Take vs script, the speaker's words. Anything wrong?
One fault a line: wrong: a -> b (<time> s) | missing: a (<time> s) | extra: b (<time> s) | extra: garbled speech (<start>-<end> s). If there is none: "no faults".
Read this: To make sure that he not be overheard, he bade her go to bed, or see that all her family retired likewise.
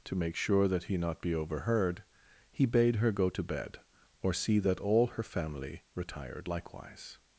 no faults